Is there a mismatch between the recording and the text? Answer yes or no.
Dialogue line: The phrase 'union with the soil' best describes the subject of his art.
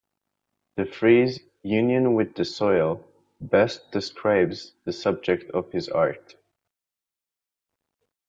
no